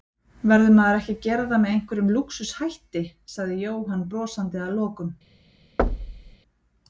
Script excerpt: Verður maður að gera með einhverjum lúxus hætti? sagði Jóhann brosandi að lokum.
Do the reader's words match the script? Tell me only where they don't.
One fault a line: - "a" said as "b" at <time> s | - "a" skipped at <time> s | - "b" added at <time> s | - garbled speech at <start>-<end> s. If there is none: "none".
- "ekki" added at 1.0 s
- "það" added at 1.5 s